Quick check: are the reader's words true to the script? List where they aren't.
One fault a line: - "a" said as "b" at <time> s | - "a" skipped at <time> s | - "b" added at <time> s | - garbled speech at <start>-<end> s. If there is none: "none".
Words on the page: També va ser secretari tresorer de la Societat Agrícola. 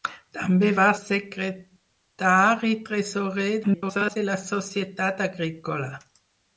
- "ser" skipped at 0.9 s
- garbled speech at 3.6-4.2 s